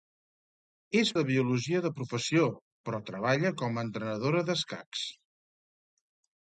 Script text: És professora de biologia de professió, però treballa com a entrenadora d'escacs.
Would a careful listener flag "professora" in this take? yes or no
yes